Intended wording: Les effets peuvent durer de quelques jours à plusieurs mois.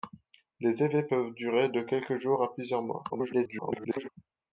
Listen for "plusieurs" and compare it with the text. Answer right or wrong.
right